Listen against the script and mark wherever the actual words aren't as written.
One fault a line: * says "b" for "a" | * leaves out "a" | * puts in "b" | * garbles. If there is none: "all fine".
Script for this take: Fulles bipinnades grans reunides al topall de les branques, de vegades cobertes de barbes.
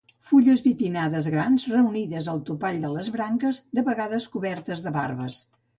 all fine